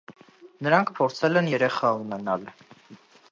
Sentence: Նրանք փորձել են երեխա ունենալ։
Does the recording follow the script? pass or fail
pass